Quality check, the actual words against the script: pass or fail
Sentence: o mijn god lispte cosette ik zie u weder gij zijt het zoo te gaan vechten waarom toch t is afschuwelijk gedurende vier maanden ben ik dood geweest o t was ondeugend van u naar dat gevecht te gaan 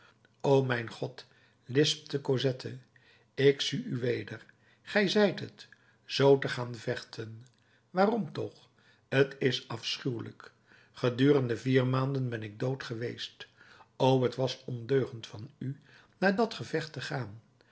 pass